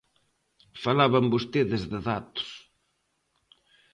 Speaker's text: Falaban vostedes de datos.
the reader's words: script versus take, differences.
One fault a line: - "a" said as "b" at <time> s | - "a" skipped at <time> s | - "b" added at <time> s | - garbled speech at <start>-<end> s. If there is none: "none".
none